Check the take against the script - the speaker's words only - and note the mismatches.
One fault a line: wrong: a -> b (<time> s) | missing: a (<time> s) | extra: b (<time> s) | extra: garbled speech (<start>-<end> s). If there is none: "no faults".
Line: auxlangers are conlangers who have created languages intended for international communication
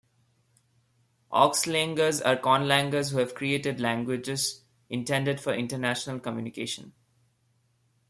no faults